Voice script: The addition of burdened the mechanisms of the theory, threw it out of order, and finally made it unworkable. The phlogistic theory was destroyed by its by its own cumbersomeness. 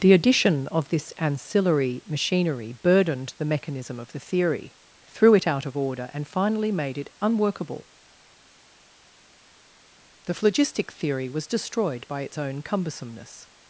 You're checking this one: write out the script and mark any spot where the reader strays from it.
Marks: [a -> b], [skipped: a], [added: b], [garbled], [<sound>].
The addition of [added: this ancillary machinery] burdened the [mechanisms -> mechanism] of the theory, threw it out of order, and finally made it unworkable. The phlogistic theory was destroyed by its [skipped: by its] own cumbersomeness.